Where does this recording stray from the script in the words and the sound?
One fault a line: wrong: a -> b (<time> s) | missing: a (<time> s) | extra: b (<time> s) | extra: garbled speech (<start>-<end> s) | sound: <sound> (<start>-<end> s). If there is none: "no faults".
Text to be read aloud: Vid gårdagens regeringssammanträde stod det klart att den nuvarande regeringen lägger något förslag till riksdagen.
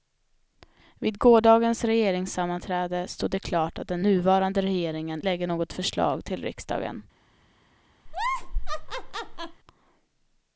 sound: laugh (8.1-9.6 s)